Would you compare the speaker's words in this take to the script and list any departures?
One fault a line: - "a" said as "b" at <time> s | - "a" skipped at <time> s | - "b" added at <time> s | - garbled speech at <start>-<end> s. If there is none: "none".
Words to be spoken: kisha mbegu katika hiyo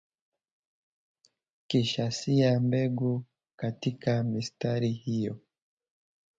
- "sia" added at 2.1 s
- "mistari" added at 4.2 s